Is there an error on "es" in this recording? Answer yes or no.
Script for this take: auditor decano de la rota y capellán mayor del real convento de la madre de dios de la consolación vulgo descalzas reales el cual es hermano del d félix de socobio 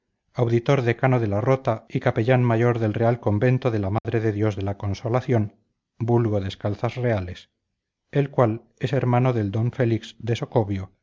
no